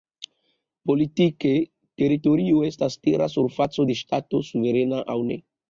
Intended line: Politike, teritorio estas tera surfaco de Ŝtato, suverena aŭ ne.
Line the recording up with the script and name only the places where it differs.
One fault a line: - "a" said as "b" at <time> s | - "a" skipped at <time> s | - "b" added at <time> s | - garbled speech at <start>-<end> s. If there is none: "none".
none